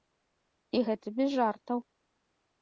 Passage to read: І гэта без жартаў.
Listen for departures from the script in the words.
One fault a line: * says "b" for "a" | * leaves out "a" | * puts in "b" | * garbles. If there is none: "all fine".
all fine